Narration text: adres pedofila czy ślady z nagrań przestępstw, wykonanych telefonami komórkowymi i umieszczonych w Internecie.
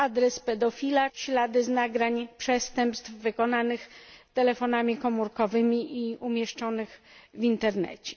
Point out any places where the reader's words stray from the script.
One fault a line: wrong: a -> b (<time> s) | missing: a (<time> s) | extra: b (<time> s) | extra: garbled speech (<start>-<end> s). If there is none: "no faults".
missing: czy (1.1 s)